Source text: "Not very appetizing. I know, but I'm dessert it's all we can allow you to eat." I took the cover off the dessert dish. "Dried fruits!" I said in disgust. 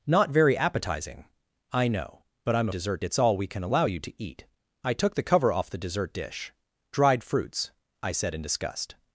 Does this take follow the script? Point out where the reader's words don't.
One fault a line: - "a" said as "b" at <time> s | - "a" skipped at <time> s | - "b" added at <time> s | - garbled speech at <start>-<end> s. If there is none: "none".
none